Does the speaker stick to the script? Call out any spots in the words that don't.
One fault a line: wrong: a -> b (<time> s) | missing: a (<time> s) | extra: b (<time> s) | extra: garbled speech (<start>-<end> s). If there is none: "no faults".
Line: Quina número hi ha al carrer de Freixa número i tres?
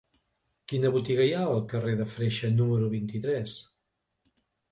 wrong: número -> botiga (0.9 s)
extra: vint (2.9 s)